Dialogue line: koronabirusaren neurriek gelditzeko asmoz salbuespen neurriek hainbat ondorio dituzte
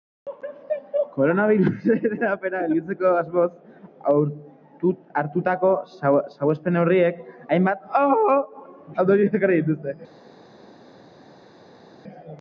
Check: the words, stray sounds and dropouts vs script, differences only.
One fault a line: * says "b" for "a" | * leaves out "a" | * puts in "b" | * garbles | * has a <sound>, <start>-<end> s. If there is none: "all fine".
* says "hedapena" for "neurriek"
* puts in "hartutako"
* puts in "ekarri"